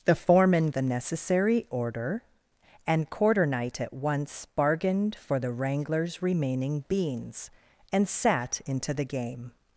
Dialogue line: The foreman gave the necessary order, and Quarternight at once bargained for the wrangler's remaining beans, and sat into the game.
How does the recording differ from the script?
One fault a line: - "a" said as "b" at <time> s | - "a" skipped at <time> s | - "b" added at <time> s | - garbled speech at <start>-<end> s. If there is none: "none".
- "gave" skipped at 0.7 s